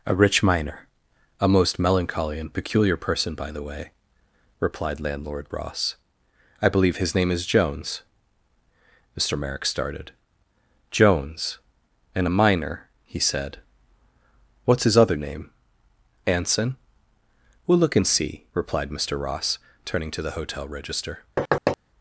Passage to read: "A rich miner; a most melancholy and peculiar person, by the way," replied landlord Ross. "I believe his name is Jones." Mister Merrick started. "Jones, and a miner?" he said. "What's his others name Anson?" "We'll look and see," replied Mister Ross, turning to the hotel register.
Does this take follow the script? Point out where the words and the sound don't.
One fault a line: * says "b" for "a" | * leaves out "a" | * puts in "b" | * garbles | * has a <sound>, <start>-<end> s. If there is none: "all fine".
* says "other" for "others"
* has a thud, 21.4-21.8 s